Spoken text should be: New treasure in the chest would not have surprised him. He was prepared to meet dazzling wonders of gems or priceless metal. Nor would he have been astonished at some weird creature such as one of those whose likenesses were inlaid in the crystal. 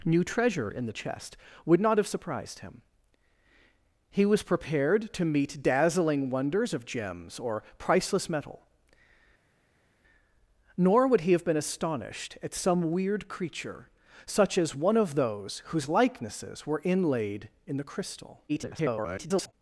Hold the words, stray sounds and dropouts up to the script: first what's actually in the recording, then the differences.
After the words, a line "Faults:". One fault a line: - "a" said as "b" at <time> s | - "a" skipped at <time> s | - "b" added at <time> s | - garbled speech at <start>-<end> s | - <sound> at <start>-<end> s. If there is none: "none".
New treasure in the chest would not have surprised him. He was prepared to meet dazzling wonders of gems or priceless metal. Nor would he have been astonished at some weird creature such as one of those whose likenesses were inlaid in the crystal. [garbled]
Faults:
- garbled speech at 18.5-19.5 s